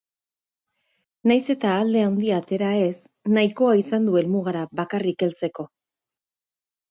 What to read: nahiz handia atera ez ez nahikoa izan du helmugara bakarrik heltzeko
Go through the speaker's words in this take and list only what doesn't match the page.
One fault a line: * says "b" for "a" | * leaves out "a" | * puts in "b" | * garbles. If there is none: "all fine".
* puts in "eta alde"
* leaves out "ez"